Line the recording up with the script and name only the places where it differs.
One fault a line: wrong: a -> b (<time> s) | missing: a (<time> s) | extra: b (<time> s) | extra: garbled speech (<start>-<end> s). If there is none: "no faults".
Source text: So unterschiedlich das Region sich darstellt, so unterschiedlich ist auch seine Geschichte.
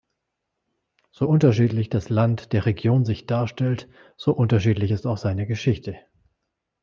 extra: Land der (2.1 s)